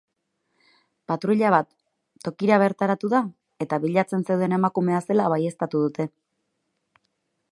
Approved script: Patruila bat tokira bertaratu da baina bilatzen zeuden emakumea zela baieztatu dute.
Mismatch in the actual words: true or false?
true